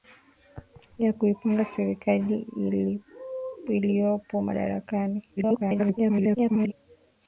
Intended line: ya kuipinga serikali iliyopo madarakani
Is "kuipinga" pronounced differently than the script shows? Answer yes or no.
no